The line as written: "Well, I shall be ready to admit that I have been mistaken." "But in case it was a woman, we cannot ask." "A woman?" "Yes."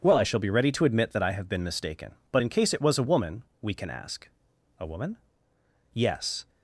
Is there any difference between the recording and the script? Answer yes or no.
yes